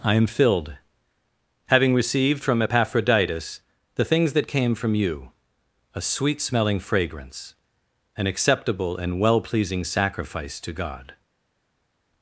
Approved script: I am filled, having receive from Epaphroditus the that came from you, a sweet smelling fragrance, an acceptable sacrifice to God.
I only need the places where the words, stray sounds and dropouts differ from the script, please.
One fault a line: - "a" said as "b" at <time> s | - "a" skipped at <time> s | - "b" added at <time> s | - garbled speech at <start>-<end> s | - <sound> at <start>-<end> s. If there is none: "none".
- "receive" said as "received" at 1.9 s
- "things" added at 4.0 s
- "and well pleasing" added at 9.0 s